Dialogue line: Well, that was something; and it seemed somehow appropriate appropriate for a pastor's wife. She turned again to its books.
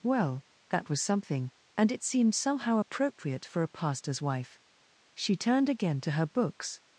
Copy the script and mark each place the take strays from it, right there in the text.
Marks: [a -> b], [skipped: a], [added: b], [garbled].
Well, that was something; and it seemed somehow appropriate [skipped: appropriate] for a pastor's wife. She turned again to [its -> her] books.